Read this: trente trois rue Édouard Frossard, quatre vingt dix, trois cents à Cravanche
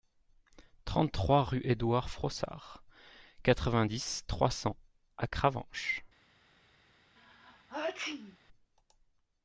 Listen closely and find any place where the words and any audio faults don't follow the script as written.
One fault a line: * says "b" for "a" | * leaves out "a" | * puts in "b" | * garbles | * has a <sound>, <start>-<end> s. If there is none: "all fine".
* has a sneeze, 7.2-8.4 s